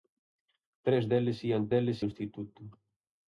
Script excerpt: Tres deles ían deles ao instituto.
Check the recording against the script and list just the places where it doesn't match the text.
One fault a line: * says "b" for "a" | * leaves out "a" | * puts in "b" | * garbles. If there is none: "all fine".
all fine